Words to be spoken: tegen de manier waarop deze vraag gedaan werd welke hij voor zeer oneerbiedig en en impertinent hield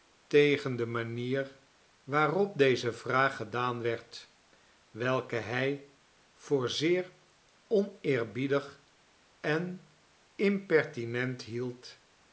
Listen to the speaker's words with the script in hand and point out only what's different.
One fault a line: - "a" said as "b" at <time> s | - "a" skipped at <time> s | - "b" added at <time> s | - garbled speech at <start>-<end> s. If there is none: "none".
- "en" skipped at 9.9 s